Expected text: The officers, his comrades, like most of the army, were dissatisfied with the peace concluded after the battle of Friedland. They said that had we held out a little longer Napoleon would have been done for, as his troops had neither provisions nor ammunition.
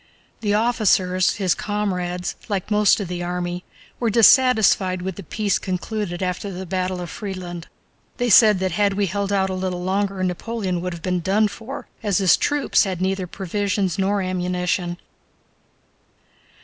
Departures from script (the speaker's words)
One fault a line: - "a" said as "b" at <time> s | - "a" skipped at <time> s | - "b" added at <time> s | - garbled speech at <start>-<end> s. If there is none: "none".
none